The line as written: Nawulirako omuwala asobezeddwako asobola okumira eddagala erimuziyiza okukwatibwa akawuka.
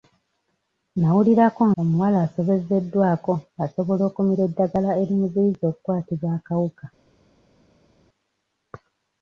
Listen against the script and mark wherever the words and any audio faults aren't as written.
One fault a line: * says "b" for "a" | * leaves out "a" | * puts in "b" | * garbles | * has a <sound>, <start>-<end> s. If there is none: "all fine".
all fine